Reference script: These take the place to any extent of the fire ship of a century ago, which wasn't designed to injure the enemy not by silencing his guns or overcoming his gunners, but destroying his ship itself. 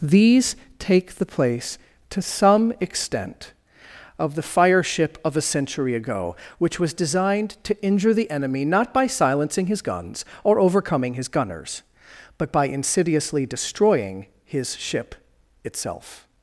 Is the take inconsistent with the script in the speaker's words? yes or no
yes